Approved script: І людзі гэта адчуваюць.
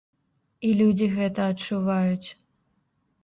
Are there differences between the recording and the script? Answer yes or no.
no